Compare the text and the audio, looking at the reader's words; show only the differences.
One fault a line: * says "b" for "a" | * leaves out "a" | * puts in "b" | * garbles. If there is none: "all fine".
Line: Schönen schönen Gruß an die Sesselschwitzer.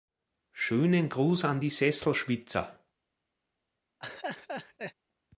* leaves out "schönen"